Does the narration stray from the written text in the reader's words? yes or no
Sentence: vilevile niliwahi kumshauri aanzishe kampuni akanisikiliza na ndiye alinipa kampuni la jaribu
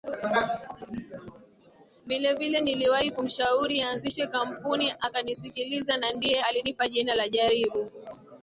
yes